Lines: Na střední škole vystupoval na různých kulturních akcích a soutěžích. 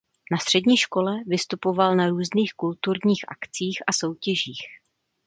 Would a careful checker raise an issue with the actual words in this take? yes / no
no